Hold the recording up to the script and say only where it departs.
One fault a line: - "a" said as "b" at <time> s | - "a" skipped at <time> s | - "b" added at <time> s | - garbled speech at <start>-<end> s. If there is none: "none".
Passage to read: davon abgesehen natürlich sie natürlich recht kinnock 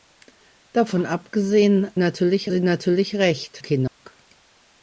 none